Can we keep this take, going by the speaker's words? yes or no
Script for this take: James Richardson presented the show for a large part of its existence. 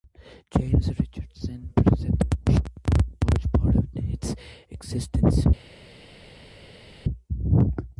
yes